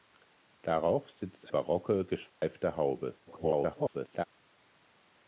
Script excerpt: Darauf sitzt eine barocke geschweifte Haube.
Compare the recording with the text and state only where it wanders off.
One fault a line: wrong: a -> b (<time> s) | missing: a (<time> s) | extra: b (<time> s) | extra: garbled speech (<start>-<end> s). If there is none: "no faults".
missing: eine (1.5 s)
extra: garbled speech (3.3-4.2 s)